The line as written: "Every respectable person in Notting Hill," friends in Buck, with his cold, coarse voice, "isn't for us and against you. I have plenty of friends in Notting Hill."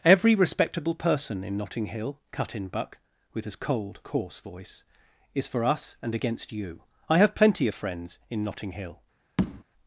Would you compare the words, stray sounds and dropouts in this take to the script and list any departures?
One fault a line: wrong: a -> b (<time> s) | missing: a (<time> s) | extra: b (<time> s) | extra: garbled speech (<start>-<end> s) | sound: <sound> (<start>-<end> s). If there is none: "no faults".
wrong: friends -> cut (2.3 s)
wrong: isn't -> is (5.3 s)
sound: tap (9.4-9.6 s)